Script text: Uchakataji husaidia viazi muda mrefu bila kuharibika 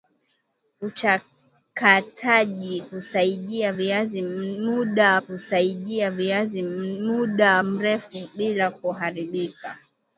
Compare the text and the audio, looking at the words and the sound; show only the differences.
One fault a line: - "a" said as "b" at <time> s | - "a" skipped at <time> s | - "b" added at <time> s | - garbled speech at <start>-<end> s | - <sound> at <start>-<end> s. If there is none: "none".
- "husaidia viazi muda" added at 5.2 s